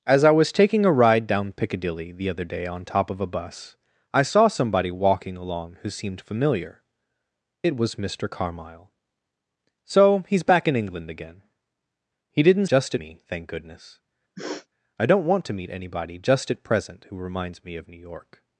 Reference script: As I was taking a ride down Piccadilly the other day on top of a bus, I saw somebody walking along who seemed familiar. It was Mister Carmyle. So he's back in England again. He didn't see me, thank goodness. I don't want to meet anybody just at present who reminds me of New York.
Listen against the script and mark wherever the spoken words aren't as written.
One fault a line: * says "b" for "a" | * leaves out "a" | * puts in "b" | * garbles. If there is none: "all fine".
* says "just" for "see"